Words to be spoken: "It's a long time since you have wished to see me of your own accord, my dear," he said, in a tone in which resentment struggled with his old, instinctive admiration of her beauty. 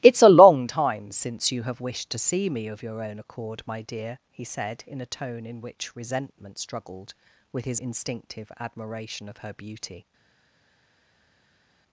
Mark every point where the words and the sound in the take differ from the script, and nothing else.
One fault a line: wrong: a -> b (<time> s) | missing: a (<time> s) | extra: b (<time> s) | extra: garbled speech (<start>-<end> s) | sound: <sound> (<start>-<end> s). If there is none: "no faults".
missing: old (7.8 s)